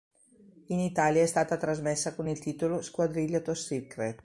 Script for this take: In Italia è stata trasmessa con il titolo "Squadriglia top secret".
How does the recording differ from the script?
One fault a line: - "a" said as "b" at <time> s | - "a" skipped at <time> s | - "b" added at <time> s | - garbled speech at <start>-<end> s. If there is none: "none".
none